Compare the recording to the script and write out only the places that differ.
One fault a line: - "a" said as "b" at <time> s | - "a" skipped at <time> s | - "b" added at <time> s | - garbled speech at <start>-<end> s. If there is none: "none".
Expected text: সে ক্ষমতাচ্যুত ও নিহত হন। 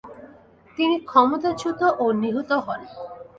- "সে" said as "তিনি" at 0.8 s